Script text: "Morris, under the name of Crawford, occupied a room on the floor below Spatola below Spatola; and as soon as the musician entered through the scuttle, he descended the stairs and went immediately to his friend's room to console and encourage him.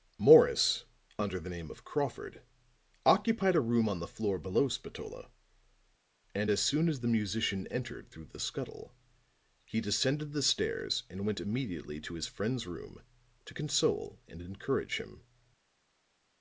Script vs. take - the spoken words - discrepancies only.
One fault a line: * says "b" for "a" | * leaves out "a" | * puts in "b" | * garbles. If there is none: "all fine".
* leaves out "below Spatola"